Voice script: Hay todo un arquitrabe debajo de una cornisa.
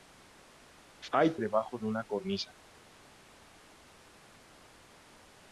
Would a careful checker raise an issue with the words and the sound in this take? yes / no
yes